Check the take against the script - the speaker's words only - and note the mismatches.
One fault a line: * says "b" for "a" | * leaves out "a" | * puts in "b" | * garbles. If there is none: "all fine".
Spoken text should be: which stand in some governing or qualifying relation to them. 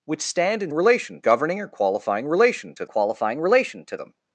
* says "relation" for "some"
* puts in "qualifying relation to"